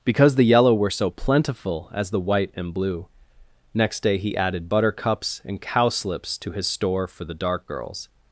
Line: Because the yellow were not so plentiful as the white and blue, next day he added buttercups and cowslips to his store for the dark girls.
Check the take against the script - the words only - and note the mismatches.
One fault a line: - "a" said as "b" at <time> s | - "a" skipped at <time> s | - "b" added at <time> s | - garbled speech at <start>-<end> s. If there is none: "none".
- "not" skipped at 0.9 s